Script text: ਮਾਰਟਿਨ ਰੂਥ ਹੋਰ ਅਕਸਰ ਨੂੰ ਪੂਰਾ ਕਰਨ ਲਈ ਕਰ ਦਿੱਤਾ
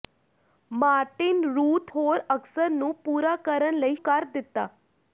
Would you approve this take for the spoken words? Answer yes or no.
yes